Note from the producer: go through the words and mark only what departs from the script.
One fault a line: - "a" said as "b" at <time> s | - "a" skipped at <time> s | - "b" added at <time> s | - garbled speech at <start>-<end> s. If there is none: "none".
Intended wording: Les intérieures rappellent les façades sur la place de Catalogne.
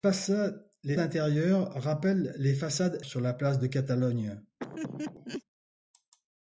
none